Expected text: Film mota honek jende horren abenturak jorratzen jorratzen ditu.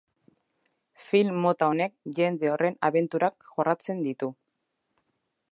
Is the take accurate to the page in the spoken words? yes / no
no